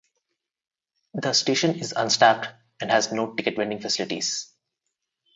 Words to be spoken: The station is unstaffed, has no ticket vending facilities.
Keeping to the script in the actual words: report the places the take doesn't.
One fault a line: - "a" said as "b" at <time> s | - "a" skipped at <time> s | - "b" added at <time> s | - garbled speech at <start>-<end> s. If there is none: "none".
- "and" added at 2.8 s